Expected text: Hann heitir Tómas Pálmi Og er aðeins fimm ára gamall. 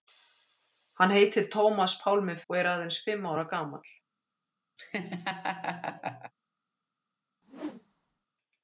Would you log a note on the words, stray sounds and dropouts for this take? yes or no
yes